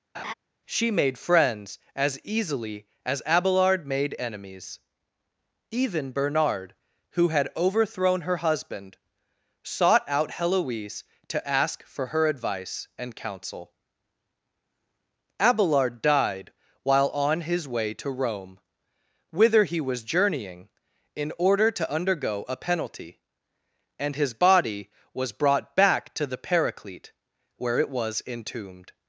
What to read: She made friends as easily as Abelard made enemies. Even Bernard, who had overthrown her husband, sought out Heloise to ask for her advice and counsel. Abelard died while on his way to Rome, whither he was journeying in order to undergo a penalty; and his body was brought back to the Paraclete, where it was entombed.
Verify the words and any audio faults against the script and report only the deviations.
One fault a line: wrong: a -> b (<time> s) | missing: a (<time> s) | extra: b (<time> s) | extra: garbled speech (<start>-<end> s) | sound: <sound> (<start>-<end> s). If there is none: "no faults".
sound: laugh (0.1-0.3 s)